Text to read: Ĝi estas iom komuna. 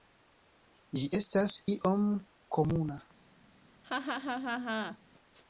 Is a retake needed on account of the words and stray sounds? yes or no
yes